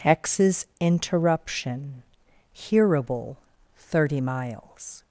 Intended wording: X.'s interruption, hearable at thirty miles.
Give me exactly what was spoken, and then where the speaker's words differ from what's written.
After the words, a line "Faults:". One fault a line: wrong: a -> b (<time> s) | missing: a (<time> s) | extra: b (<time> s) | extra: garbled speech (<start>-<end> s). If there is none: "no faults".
X.'s interruption, hearable thirty miles.
Faults:
missing: at (3.4 s)